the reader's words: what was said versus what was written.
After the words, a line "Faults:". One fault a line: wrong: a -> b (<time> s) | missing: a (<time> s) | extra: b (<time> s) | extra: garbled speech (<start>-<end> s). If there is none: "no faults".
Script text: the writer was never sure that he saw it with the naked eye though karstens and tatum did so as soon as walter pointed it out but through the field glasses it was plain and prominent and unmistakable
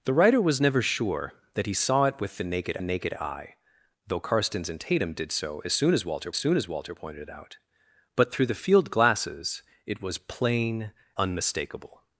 the writer was never sure that he saw it with the naked naked eye though karstens and tatum did so as soon as walter soon as walter pointed it out but through the field glasses it was plain unmistakable
Faults:
extra: naked (2.8 s)
extra: soon as walter (6.4 s)
missing: and prominent and (10.9 s)